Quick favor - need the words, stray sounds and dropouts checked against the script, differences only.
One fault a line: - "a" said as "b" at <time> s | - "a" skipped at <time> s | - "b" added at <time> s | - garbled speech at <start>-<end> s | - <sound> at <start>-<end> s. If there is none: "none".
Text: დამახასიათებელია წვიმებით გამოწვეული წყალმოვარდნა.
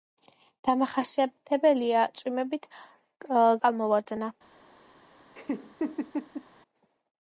- "გამოწვეული" skipped at 2.7 s
- laugh at 5.3-6.4 s